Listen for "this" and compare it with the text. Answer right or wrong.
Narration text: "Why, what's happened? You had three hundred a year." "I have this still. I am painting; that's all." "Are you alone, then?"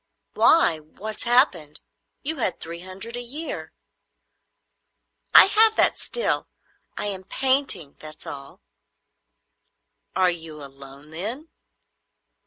wrong